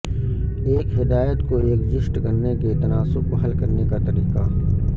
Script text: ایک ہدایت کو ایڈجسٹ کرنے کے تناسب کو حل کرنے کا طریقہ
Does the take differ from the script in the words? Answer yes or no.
no